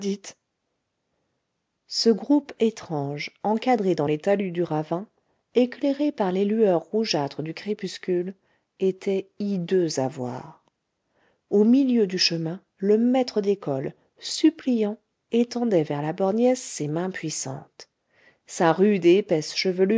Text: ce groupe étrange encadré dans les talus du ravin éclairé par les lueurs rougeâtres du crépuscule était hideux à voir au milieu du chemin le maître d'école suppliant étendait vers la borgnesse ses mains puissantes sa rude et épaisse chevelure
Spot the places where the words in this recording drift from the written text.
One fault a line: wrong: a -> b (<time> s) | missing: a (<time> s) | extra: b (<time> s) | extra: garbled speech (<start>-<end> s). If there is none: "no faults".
no faults